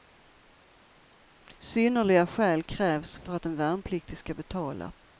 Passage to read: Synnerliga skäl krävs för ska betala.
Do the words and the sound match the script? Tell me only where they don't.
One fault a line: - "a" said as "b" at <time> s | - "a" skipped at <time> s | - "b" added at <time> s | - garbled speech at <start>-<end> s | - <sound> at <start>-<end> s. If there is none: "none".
- "att en värnpliktig" added at 3.3 s